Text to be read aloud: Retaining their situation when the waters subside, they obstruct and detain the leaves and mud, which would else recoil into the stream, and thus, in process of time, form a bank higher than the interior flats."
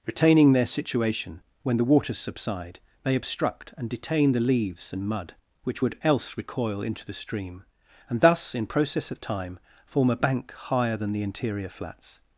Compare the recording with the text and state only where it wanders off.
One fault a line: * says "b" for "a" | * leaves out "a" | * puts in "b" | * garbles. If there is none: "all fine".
all fine